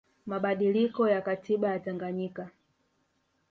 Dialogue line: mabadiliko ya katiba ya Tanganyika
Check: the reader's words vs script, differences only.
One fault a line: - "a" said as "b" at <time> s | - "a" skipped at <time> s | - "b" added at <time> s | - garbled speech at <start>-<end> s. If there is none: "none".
none